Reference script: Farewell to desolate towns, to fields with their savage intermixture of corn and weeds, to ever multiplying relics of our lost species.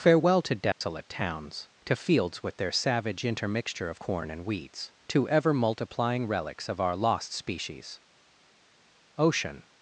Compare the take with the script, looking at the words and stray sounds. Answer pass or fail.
fail